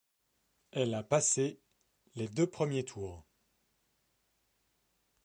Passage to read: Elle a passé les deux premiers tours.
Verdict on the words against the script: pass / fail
pass